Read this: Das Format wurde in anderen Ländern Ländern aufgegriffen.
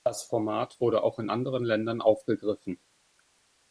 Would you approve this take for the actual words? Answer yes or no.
no